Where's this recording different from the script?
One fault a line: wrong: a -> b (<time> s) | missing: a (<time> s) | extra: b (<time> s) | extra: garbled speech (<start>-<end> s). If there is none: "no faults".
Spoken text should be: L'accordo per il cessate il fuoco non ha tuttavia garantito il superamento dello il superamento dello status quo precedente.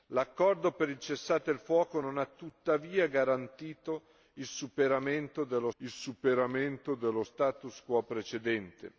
no faults